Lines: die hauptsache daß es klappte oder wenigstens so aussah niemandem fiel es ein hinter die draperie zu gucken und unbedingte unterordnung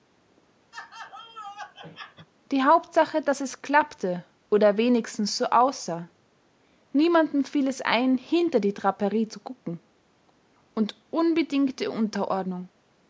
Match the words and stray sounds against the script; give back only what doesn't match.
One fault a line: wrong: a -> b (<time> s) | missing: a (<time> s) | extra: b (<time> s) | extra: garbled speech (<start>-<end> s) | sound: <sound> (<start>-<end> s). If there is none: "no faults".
sound: laugh (0.7-2.3 s)